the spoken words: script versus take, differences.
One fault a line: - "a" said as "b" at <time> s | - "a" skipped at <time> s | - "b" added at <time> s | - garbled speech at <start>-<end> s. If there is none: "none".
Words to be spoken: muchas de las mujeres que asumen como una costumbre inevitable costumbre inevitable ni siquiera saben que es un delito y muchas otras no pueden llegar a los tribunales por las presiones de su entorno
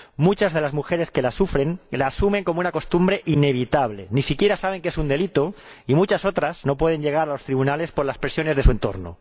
- "la sufren la" added at 1.2 s
- "costumbre inevitable" skipped at 4.1 s